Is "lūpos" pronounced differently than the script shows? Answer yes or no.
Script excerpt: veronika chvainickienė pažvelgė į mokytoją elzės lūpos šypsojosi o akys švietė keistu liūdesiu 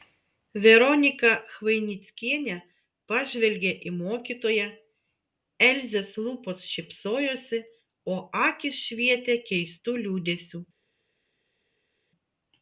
no